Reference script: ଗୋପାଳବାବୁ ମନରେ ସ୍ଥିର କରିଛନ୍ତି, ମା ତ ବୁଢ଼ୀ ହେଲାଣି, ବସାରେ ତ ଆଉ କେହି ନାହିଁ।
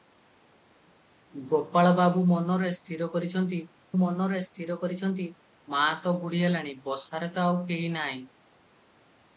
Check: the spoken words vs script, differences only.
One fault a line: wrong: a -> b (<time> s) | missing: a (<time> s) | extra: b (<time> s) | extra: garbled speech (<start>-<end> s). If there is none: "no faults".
extra: ମନରେ ସ୍ଥିର କରିଛନ୍ତି (4.0 s)